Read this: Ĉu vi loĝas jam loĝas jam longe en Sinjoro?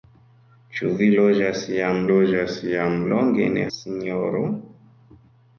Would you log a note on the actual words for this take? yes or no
no